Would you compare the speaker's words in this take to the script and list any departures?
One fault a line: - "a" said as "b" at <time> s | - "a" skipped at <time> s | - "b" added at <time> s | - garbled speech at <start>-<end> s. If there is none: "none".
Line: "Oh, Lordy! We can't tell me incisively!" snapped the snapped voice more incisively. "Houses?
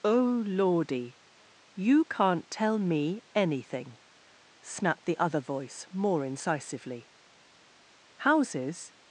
- "We" said as "You" at 1.8 s
- "incisively" said as "anything" at 3.4 s
- "snapped" said as "other" at 5.2 s